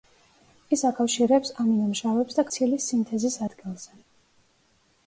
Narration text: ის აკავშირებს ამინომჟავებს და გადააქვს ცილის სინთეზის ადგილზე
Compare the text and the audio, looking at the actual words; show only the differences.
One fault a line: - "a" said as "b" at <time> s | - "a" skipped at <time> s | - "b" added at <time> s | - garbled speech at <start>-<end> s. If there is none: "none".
- "გადააქვს" skipped at 2.5 s